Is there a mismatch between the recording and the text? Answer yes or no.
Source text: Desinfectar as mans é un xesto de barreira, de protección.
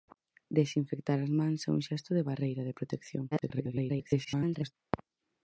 yes